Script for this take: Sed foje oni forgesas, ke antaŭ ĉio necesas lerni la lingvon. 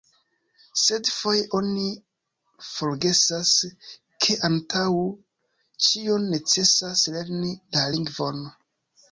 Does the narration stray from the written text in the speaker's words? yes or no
no